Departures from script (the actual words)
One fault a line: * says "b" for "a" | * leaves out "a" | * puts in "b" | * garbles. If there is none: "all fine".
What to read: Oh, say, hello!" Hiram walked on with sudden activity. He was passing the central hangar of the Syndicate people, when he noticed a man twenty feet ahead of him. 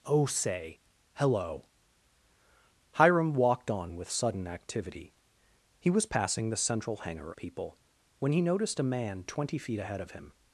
* leaves out "of the Syndicate"